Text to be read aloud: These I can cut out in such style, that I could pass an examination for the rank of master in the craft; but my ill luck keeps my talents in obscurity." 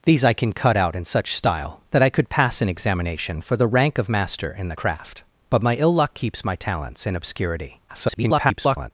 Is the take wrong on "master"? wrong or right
right